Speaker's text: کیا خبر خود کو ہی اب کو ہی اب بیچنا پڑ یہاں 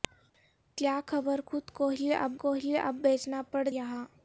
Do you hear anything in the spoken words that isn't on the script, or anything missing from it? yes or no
no